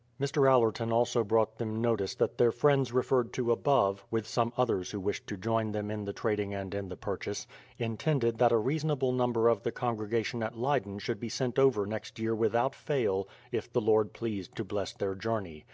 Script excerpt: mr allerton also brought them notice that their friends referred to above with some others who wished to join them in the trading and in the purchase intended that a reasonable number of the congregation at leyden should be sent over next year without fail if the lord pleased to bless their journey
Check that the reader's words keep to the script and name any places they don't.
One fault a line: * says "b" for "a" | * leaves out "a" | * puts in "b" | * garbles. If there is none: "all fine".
all fine